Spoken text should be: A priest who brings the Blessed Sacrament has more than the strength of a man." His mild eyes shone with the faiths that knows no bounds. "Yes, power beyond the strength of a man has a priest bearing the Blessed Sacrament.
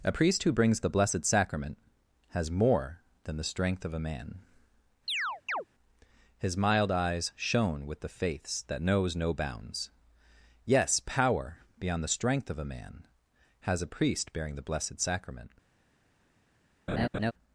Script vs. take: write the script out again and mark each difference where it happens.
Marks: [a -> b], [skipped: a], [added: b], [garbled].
A priest who brings the Blessed Sacrament has more than the strength of a man." His mild eyes shone with the faiths that knows no bounds. "Yes, power beyond the strength of a man has a priest bearing the Blessed Sacrament.